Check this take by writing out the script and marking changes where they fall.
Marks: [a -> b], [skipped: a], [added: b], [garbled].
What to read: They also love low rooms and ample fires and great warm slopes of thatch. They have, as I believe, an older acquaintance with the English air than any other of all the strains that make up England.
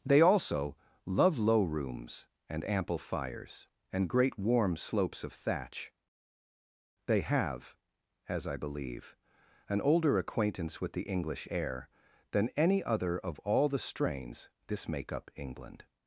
They also love low rooms and ample fires and great warm slopes of thatch. They have, as I believe, an older acquaintance with the English air than any other of all the strains [that -> this] make up England.